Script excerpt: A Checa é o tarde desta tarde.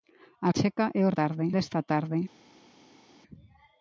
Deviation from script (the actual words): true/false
false